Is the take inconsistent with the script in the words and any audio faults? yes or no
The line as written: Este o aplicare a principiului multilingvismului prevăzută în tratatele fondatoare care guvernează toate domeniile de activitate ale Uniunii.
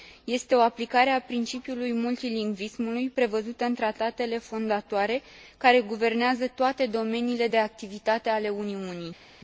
no